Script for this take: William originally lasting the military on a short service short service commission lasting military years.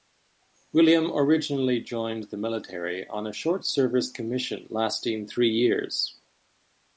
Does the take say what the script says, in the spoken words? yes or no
no